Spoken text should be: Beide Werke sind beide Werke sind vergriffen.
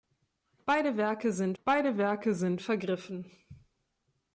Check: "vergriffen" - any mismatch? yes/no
no